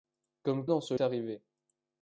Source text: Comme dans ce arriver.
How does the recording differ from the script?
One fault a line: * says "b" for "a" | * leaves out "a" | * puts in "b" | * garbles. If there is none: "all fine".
all fine